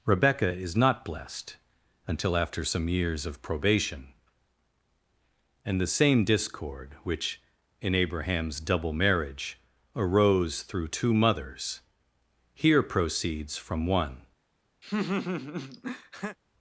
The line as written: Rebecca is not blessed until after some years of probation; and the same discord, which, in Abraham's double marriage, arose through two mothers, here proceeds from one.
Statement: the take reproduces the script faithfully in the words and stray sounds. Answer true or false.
false